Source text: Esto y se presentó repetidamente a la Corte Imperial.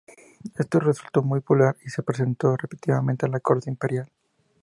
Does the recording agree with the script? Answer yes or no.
no